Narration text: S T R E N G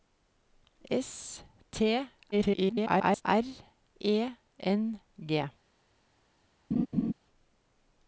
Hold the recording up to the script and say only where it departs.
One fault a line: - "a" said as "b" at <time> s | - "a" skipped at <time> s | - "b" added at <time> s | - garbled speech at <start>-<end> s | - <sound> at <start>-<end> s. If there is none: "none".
- garbled speech at 2.3-3.2 s
- laugh at 6.7-7.1 s